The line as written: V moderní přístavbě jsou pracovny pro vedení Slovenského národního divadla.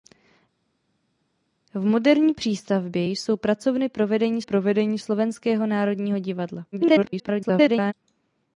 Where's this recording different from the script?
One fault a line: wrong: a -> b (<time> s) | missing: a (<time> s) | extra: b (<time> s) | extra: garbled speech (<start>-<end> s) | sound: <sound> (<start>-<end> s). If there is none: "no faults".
extra: pro vedení (4.4 s)
extra: garbled speech (6.7-7.9 s)